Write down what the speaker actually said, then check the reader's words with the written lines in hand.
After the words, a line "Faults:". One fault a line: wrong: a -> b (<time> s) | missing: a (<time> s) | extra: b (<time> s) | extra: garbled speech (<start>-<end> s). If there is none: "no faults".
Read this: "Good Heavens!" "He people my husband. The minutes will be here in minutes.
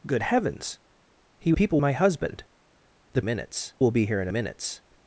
"Good Heavens!" "He people my husband. The minutes will be here in minutes.
Faults:
no faults